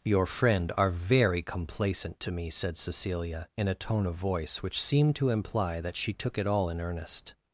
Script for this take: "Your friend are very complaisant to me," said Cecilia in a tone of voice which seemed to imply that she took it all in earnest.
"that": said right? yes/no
yes